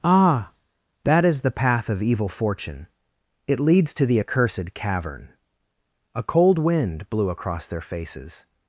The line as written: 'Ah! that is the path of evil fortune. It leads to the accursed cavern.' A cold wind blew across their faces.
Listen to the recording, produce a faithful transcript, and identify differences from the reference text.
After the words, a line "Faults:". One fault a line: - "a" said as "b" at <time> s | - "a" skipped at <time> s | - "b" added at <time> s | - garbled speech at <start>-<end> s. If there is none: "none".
'Ah! that is the path of evil fortune. It leads to the accursed cavern.' A cold wind blew across their faces.
Faults:
none